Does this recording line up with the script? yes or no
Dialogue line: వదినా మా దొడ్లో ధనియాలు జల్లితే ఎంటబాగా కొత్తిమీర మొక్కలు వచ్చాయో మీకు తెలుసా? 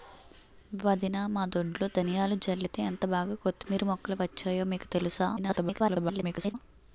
no